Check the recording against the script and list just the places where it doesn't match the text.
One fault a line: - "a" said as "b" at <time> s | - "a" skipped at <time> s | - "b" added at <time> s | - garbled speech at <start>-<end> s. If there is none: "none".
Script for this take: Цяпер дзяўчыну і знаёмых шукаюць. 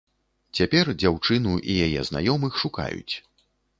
- "яе" added at 1.9 s